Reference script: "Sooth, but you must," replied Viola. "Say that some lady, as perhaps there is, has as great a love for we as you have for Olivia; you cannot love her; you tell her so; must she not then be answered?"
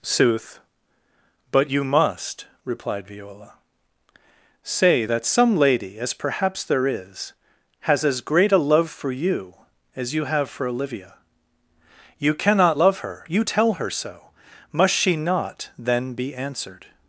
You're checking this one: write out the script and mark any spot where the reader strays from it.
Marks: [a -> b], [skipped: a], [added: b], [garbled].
"Sooth, but you must," replied Viola. "Say that some lady, as perhaps there is, has as great a love for [we -> you] as you have for Olivia; you cannot love her; you tell her so; must she not then be answered?"